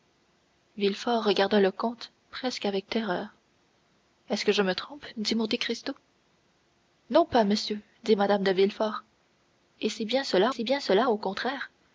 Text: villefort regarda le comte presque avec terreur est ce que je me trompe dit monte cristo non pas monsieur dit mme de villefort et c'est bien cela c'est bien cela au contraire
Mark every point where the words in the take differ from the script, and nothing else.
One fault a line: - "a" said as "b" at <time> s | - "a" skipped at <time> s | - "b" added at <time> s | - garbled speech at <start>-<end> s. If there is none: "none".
none